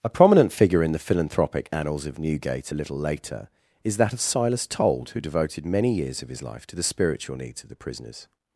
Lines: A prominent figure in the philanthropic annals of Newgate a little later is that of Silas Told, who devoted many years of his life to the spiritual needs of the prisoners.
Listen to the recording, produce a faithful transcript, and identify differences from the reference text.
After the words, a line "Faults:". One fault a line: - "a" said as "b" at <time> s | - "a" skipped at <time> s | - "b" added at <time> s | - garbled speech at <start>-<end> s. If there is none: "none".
A prominent figure in the philanthropic annals of Newgate a little later is that of Silas Told, who devoted many years of his life to the spiritual needs of the prisoners.
Faults:
none